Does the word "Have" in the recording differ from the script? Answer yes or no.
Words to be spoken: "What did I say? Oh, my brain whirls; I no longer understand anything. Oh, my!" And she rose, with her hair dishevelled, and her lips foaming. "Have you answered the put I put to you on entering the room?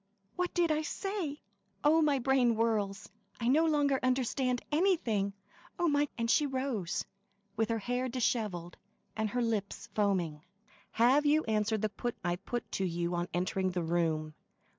no